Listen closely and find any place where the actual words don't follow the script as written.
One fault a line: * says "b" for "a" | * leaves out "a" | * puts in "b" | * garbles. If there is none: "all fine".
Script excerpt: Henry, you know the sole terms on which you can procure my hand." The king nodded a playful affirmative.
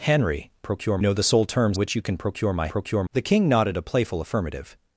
* says "procure" for "you"
* leaves out "on"
* says "procure" for "hand"